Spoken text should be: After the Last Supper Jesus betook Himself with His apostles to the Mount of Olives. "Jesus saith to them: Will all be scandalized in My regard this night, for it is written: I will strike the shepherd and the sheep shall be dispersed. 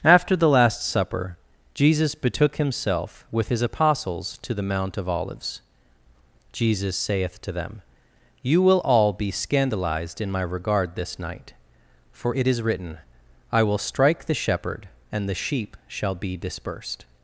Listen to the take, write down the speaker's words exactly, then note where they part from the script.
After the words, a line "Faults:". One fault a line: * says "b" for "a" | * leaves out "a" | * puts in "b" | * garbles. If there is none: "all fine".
After the Last Supper Jesus betook Himself with His apostles to the Mount of Olives. "Jesus saith to them: You will all be scandalized in My regard this night, for it is written: I will strike the shepherd and the sheep shall be dispersed.
Faults:
* puts in "You"